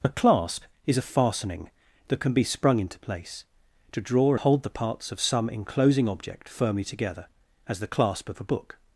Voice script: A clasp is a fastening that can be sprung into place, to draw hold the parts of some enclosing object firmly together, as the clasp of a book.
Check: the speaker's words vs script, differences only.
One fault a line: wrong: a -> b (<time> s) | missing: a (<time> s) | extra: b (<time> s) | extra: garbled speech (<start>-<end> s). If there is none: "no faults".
no faults